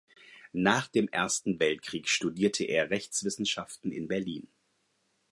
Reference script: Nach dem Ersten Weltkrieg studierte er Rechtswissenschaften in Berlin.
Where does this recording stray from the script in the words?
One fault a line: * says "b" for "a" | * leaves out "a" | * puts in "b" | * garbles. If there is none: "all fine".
all fine